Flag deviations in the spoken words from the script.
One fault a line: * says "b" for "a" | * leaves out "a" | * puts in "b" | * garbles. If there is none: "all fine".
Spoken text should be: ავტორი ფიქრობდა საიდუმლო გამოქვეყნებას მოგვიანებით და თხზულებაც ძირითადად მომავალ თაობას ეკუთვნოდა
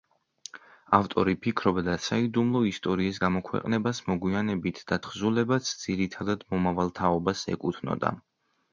* puts in "ისტორიის"